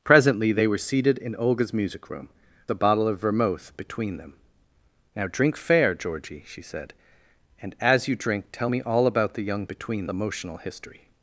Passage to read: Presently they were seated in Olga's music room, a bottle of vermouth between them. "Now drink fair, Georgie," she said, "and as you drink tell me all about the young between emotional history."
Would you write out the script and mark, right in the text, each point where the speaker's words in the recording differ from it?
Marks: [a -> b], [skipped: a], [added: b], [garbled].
Presently they were seated in Olga's music room, a bottle of vermouth between them. "Now drink fair, Georgie," she said, "and as you drink tell me all about the young between emotional history."